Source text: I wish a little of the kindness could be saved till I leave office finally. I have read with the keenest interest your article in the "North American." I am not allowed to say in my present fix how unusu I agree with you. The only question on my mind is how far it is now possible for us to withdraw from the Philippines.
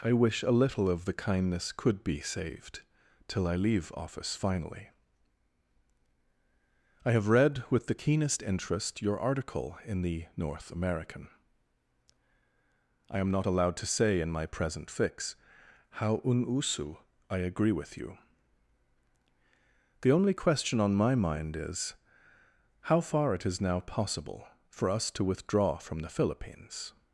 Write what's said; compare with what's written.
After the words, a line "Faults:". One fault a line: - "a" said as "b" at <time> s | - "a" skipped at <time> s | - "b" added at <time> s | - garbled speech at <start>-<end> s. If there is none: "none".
I wish a little of the kindness could be saved till I leave office finally. I have read with the keenest interest your article in the "North American." I am not allowed to say in my present fix how unusu I agree with you. The only question on my mind is how far it is now possible for us to withdraw from the Philippines.
Faults:
none